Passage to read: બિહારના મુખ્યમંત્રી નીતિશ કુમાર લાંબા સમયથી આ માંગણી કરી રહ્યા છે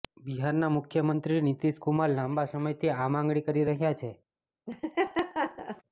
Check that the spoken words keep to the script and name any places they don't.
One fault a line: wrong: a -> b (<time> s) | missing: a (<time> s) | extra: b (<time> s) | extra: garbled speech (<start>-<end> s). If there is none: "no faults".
no faults